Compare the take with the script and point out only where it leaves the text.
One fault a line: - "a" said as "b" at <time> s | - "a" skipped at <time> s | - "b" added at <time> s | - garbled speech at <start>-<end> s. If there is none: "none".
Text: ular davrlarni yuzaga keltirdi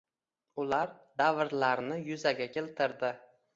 none